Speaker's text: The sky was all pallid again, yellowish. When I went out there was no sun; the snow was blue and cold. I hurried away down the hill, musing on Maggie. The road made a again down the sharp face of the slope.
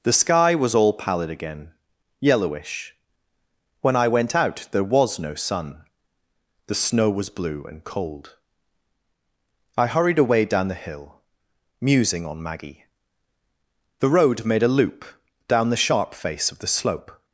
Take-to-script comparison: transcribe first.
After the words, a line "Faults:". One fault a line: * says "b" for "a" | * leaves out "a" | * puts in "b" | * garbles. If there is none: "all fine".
The sky was all pallid again, yellowish. When I went out there was no sun; the snow was blue and cold. I hurried away down the hill, musing on Maggie. The road made a loop down the sharp face of the slope.
Faults:
* says "loop" for "again"